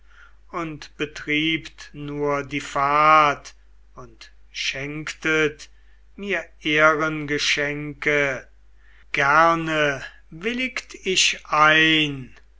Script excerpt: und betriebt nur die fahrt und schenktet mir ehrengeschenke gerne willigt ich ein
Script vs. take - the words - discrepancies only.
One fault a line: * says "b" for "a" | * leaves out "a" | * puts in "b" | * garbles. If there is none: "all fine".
all fine